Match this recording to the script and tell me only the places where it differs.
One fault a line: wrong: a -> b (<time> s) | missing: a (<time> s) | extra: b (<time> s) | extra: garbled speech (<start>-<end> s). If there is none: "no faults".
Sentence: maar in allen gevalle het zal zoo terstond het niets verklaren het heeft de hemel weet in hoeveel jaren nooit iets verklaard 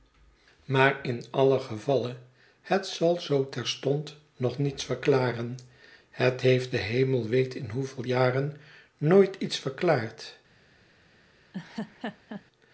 wrong: het -> nog (4.3 s)